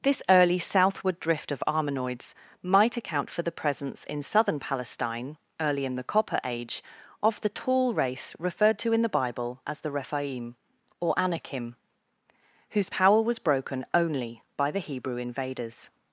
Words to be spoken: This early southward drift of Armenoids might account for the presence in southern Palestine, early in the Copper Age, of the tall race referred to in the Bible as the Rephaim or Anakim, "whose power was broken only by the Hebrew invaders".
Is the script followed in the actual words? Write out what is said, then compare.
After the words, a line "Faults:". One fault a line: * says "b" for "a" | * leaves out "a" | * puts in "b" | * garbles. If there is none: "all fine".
This early southward drift of Armenoids might account for the presence in southern Palestine, early in the Copper Age, of the tall race referred to in the Bible as the Rephaim or Anakim, "whose power was broken only by the Hebrew invaders".
Faults:
all fine